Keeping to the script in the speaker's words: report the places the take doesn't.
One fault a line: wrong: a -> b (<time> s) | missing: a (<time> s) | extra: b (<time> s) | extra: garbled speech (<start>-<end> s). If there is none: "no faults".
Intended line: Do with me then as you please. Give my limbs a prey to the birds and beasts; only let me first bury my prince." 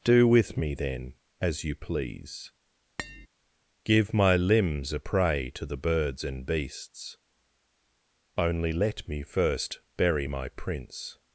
no faults